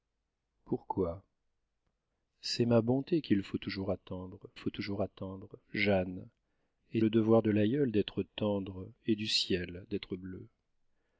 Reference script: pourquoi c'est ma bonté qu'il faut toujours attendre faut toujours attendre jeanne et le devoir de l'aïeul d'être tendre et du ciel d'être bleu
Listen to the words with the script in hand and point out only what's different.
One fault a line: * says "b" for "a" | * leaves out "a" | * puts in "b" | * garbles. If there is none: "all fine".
all fine